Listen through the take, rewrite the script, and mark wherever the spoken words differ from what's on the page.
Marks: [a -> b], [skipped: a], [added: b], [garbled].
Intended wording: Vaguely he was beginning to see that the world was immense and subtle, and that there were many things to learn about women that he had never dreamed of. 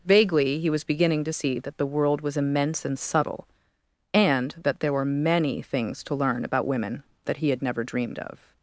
Vaguely he was beginning to see that the world was immense and subtle, and that there were many things to learn about women that he had never dreamed of.